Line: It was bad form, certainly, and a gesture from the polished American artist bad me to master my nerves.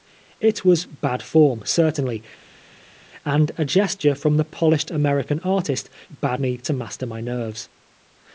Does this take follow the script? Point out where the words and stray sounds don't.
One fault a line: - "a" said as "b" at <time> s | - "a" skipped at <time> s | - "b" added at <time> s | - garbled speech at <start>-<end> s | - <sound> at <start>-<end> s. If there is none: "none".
none